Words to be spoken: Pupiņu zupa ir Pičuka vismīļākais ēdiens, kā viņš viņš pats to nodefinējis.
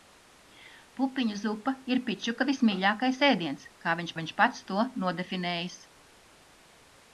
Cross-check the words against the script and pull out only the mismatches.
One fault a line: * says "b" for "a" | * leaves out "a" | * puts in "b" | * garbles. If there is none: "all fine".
all fine